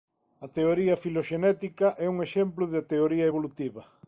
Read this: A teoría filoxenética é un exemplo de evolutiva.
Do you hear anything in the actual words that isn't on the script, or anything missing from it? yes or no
yes